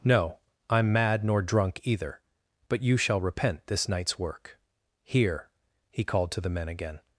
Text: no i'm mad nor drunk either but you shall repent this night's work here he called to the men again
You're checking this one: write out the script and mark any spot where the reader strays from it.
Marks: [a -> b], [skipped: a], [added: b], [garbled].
no i'm mad nor drunk either but you shall repent this night's work here he called to the men again